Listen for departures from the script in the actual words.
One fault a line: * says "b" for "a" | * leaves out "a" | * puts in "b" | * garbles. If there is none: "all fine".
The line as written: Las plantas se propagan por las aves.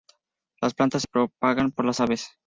all fine